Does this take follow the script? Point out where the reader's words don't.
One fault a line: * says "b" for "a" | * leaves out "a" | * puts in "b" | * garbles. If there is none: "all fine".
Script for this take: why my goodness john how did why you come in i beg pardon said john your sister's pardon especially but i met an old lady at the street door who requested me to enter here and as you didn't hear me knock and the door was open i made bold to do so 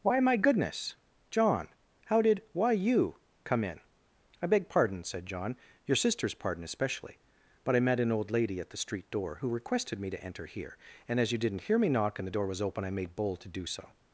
all fine